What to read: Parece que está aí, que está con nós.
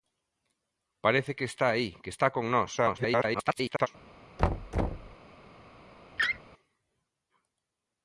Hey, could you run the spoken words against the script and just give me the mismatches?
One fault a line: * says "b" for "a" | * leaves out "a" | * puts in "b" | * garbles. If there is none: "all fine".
* garbles